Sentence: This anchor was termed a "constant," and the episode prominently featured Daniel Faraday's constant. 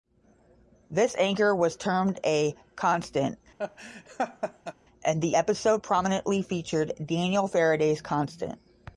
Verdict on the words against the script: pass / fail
pass